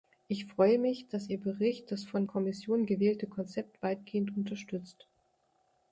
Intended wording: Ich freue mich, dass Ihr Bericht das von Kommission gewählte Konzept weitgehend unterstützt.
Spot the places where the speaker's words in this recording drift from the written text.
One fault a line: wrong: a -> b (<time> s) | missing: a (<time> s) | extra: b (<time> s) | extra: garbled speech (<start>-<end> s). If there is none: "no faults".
no faults